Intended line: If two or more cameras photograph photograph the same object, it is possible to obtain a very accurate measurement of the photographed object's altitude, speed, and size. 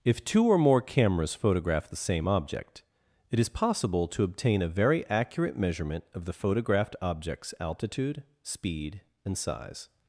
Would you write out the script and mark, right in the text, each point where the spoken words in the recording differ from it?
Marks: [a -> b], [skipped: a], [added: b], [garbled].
If two or more cameras photograph [skipped: photograph] the same object, it is possible to obtain a very accurate measurement of the photographed object's altitude, speed, and size.